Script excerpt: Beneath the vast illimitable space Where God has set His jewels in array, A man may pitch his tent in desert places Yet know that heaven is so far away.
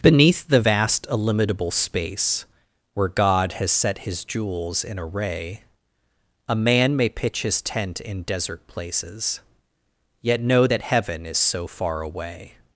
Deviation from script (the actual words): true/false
false